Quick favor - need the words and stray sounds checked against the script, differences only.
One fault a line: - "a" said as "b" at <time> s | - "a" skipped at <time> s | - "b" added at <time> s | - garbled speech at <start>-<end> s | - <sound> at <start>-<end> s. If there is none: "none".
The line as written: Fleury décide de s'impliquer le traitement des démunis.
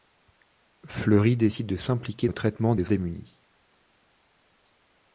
none